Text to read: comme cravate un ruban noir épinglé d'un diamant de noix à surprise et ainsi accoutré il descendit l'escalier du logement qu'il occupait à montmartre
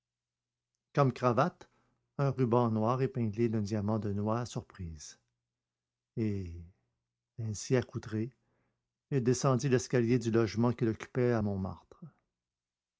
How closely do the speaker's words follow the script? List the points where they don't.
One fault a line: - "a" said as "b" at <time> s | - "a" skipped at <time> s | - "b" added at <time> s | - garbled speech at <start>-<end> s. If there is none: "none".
none